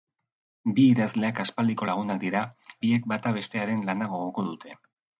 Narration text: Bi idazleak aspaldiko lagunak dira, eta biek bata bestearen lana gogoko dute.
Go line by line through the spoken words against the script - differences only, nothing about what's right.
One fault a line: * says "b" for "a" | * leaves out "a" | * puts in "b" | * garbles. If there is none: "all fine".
* leaves out "eta"